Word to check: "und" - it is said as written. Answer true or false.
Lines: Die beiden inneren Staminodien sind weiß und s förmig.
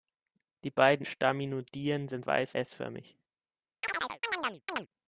false